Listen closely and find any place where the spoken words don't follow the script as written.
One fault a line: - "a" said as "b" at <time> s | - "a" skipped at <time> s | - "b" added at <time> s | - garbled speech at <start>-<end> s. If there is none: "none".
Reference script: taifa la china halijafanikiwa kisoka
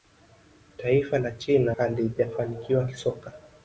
none